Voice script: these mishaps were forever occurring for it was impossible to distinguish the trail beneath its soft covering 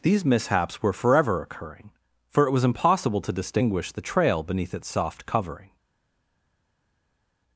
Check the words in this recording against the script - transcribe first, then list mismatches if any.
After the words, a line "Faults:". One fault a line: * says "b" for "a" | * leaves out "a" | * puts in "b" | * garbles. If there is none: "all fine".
these mishaps were forever occurring for it was impossible to distinguish the trail beneath its soft covering
Faults:
all fine